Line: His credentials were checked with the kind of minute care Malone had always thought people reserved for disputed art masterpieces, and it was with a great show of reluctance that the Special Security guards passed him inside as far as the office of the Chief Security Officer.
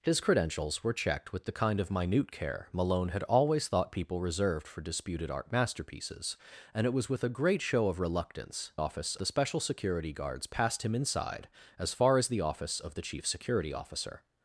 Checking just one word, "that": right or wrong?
wrong